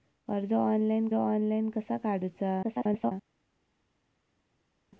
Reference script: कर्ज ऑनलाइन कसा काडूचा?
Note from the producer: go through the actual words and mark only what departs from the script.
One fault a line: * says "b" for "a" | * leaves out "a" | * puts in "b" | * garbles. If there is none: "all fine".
* puts in "ऑनलाइन"
* garbles